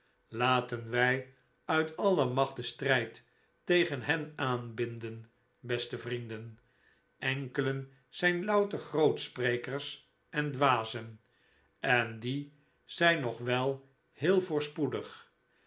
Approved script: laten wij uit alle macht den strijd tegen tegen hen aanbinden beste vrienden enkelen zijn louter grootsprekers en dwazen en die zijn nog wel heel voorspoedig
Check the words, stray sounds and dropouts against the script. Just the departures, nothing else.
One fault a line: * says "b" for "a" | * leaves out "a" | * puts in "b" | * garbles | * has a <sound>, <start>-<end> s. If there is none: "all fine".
* leaves out "tegen"